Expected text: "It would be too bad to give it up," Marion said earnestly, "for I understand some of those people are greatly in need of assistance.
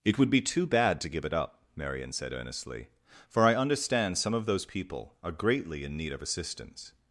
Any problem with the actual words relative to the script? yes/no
no